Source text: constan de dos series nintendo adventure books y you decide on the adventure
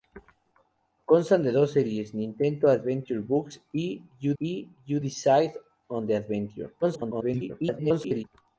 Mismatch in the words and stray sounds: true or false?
true